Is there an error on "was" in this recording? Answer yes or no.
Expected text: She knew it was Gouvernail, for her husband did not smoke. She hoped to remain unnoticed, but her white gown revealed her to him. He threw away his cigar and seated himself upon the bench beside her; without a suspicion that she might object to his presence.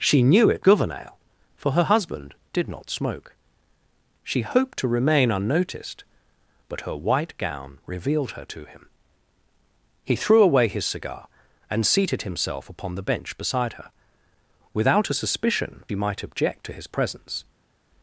yes